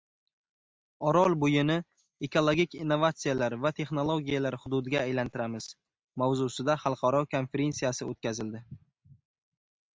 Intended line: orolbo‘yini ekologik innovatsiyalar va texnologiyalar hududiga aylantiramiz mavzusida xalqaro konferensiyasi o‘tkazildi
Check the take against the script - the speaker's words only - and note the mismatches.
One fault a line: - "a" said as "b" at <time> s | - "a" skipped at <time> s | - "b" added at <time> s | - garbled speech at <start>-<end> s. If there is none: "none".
none